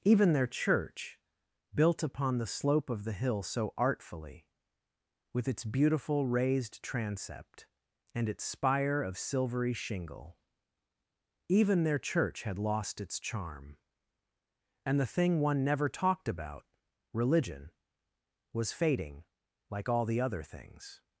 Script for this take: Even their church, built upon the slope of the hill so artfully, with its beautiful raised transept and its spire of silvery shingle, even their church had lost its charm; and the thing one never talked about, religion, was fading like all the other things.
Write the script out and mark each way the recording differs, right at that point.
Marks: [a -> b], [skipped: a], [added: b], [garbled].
Even their church, built upon the slope of the hill so artfully, with its beautiful raised transept and its spire of silvery shingle, even their church had lost its charm; and the thing one never talked about, religion, was fading like all the other things.